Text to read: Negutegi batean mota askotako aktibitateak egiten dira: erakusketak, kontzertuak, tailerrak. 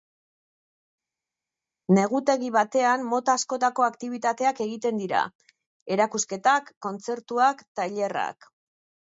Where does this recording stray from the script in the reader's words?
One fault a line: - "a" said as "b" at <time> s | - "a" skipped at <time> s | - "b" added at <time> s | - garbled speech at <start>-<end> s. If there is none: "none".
none